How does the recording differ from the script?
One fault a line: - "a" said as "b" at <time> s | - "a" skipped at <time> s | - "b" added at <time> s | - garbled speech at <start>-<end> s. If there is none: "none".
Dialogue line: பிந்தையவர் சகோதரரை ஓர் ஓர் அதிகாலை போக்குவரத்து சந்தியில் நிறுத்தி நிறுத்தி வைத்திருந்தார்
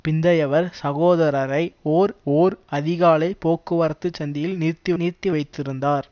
none